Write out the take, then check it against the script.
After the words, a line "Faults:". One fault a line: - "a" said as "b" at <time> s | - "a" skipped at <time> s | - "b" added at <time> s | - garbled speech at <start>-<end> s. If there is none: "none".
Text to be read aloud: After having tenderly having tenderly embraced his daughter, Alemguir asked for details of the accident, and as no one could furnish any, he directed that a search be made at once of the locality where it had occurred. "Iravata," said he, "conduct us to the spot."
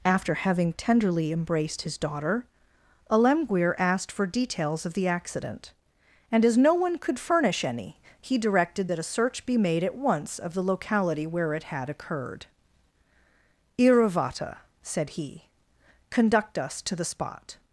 After having tenderly embraced his daughter, Alemguir asked for details of the accident, and as no one could furnish any, he directed that a search be made at once of the locality where it had occurred. "Iravata," said he, "conduct us to the spot."
Faults:
- "having tenderly" skipped at 1.3 s